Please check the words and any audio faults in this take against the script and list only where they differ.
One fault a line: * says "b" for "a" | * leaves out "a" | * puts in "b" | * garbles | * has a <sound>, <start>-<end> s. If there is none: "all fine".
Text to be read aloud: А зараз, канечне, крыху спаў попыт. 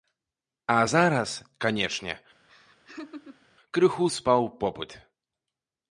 * has a laugh, 2.5-3.5 s